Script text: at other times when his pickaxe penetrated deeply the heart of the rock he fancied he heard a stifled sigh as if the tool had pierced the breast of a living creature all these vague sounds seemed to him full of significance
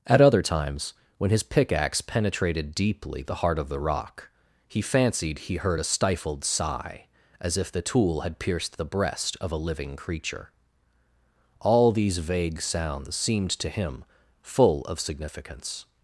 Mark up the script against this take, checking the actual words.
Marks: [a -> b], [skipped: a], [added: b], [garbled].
at other times when his pickaxe penetrated deeply the heart of the rock he fancied he heard a stifled sigh as if the tool had pierced the breast of a living creature all these vague sounds seemed to him full of significance